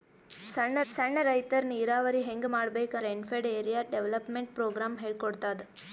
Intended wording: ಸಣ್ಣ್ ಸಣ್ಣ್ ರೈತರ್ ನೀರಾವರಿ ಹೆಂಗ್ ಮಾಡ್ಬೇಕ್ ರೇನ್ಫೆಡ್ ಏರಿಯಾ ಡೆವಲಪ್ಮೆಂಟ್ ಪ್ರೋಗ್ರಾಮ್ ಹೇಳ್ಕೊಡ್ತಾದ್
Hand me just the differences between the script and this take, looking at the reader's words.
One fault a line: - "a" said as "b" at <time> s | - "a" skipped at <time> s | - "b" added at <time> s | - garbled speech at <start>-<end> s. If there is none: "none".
none